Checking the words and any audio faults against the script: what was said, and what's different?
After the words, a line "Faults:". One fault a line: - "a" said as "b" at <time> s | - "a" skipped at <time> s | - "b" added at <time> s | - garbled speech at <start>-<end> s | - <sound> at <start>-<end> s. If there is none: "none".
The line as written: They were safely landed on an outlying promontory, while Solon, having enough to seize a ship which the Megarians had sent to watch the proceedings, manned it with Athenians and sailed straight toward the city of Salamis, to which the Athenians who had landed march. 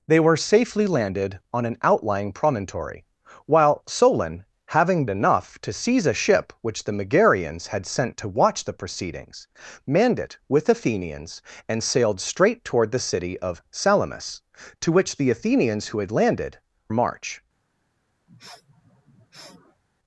They were safely landed on an outlying promontory, while Solon, having enough to seize a ship which the Megarians had sent to watch the proceedings, manned it with Athenians and sailed straight toward the city of Salamis, to which the Athenians who had landed march.
Faults:
- sniff at 18.3-19.8 s